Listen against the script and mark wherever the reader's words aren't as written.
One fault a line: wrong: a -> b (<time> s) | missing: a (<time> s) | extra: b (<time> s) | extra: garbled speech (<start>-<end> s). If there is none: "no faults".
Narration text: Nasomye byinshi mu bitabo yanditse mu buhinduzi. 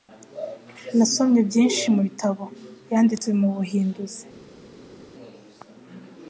no faults